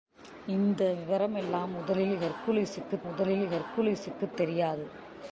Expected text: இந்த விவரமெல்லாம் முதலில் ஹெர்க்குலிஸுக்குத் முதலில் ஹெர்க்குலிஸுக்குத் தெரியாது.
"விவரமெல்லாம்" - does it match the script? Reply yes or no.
yes